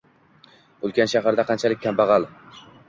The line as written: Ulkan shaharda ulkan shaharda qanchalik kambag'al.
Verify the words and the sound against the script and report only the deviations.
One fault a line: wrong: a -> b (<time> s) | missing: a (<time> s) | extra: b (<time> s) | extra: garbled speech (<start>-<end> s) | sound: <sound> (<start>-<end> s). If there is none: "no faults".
missing: ulkan shaharda (1.5 s)